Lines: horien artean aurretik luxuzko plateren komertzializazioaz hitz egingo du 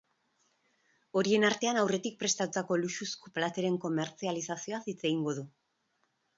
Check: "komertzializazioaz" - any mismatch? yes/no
no